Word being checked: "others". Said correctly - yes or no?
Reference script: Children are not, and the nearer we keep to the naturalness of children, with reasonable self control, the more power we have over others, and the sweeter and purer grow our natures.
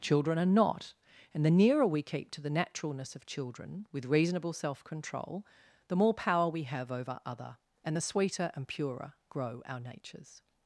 no